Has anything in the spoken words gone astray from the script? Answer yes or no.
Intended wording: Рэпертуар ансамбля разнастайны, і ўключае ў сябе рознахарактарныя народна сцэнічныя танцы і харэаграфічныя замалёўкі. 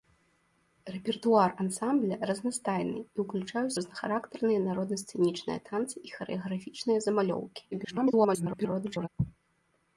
yes